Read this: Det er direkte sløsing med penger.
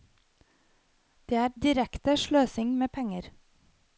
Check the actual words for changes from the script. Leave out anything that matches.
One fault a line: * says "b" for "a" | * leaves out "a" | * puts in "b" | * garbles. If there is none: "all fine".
all fine